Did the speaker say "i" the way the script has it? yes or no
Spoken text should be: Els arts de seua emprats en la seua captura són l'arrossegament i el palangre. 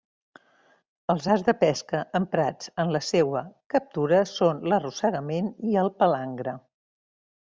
yes